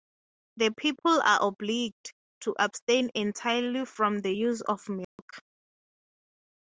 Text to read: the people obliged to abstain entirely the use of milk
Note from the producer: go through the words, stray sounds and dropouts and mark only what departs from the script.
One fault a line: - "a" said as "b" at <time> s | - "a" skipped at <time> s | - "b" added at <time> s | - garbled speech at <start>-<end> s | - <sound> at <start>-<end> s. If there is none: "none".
- "are" added at 1.2 s
- "from" added at 3.8 s
- dropout at 5.0-5.2 s